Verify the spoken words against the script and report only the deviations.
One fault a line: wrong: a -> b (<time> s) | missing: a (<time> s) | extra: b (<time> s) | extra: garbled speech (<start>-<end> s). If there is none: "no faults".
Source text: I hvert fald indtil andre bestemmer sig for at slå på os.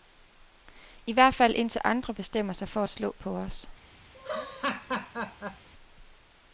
no faults